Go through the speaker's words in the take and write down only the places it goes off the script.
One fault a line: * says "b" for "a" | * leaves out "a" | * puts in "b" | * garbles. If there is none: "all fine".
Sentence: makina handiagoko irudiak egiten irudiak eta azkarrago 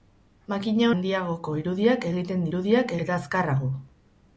all fine